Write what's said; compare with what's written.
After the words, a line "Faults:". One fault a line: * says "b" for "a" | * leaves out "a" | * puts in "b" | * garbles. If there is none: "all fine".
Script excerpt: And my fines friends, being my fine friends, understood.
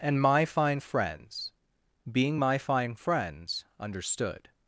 And my fine friends, being my fine friends, understood.
Faults:
* says "fine" for "fines"